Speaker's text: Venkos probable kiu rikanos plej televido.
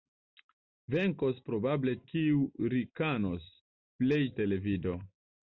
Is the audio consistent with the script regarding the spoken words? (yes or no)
yes